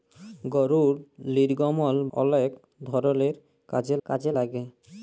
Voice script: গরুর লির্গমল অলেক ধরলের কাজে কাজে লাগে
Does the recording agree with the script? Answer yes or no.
yes